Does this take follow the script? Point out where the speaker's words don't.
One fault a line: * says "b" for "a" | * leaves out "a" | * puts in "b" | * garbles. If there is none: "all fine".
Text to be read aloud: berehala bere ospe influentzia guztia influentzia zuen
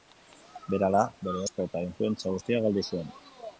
* puts in "eta"
* says "galdu" for "influentzia"